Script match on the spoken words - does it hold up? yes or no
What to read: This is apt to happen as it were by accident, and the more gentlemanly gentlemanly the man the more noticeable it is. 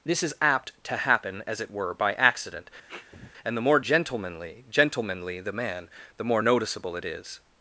yes